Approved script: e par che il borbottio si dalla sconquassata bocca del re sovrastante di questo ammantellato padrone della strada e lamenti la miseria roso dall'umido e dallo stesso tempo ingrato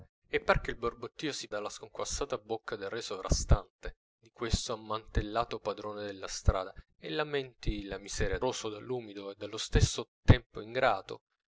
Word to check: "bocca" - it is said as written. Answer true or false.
true